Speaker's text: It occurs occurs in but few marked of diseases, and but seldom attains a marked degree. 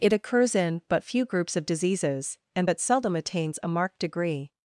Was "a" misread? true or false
false